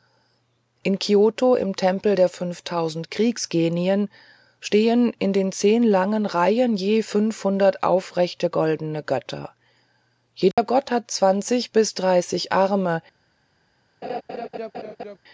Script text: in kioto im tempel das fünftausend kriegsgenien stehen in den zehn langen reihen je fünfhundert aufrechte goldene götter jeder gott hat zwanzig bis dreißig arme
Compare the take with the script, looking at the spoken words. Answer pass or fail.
fail